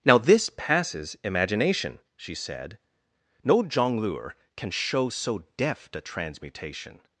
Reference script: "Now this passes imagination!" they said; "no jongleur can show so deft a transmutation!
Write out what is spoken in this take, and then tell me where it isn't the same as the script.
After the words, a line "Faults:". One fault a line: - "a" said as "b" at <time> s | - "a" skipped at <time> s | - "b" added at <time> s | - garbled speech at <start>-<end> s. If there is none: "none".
"Now this passes imagination!" she said; "no jongleur can show so deft a transmutation!
Faults:
- "they" said as "she" at 2.1 s